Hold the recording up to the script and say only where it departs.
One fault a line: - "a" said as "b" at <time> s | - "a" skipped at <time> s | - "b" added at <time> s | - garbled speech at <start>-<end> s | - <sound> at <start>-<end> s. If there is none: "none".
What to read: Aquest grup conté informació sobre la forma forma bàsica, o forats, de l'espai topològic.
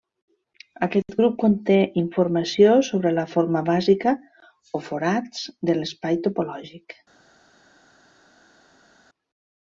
- "forma" skipped at 3.6 s